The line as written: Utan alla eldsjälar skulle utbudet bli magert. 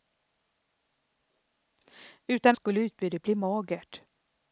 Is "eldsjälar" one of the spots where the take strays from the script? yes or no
yes